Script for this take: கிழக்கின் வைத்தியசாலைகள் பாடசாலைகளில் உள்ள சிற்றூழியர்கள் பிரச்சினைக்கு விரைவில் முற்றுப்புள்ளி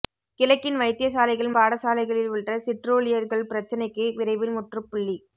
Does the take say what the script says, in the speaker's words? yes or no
yes